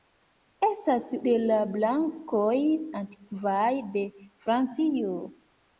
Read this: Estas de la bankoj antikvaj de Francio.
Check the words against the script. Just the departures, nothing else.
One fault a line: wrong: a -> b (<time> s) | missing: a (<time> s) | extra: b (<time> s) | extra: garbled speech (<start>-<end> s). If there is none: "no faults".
no faults